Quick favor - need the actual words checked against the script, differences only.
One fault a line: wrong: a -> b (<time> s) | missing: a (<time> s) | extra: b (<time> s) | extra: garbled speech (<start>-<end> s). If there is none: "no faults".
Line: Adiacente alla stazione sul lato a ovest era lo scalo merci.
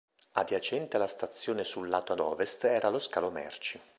no faults